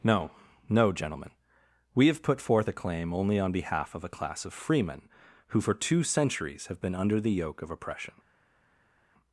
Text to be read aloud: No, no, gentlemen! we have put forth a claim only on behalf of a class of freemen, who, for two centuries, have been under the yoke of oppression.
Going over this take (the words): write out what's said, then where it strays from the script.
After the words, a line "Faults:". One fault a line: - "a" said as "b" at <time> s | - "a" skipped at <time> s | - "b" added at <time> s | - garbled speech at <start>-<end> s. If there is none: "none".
No, no, gentlemen! we have put forth a claim only on behalf of a class of freemen, who, for two centuries, have been under the yoke of oppression.
Faults:
none